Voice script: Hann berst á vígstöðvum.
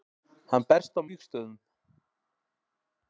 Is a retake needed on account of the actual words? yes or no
no